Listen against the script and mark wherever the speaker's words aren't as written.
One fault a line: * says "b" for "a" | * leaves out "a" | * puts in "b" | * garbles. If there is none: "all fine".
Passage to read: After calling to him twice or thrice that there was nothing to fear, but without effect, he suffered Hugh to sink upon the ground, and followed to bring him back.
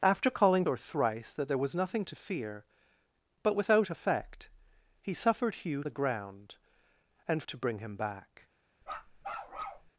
* leaves out "to him twice"
* leaves out "to sink upon"
* leaves out "followed"